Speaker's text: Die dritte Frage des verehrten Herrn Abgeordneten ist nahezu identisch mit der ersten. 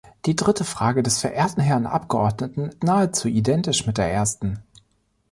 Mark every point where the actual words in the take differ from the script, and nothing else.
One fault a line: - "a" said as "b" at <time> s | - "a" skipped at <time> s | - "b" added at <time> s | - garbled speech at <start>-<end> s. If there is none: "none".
- "ist" skipped at 2.7 s